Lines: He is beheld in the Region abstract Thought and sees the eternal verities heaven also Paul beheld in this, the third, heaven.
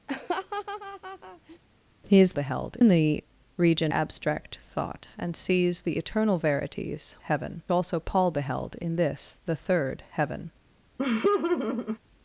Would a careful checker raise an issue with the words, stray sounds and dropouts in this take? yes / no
yes